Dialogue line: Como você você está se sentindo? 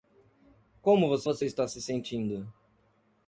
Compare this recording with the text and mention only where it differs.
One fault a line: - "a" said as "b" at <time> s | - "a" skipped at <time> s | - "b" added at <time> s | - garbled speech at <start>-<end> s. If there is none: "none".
none